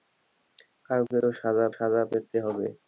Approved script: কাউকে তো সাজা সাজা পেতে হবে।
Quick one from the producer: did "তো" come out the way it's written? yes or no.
yes